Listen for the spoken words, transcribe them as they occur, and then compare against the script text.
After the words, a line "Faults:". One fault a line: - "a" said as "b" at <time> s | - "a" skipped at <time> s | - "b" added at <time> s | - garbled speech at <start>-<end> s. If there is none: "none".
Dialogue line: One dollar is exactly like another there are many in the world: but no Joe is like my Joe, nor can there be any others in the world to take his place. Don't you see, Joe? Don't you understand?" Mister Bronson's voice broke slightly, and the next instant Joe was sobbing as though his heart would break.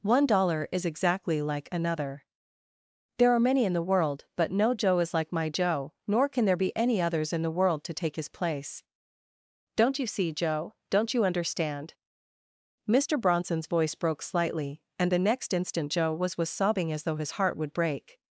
One dollar is exactly like another there are many in the world: but no Joe is like my Joe, nor can there be any others in the world to take his place. Don't you see, Joe? Don't you understand?" Mister Bronson's voice broke slightly, and the next instant Joe was was sobbing as though his heart would break.
Faults:
- "was" added at 16.4 s